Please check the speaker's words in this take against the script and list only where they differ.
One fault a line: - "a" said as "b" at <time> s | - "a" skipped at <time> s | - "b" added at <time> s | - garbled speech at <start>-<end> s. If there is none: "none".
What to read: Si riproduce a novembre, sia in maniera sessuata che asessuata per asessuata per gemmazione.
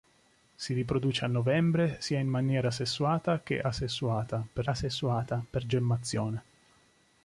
none